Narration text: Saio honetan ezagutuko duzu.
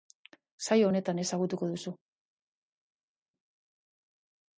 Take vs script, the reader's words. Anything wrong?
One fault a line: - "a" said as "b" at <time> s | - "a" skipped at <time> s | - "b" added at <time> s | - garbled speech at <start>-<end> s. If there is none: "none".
none